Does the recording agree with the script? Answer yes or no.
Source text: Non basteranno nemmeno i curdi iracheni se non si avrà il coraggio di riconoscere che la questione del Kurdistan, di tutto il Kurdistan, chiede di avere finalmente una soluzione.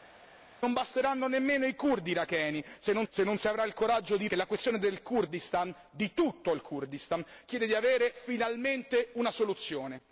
no